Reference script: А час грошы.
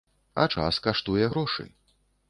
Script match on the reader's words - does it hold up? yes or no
no